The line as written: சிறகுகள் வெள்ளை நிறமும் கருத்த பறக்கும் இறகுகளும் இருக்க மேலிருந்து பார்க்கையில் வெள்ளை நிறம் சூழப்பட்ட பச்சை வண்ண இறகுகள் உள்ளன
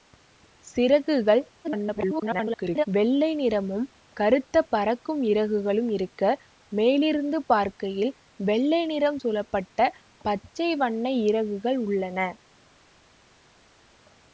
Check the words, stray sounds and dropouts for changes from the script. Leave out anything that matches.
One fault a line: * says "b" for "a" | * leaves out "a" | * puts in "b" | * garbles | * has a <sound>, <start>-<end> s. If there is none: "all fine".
* garbles